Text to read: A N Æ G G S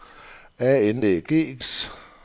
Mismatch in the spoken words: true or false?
false